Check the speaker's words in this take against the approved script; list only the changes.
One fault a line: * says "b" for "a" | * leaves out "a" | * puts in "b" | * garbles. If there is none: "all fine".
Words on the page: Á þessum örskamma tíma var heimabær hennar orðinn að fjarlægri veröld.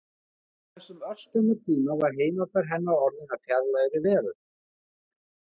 all fine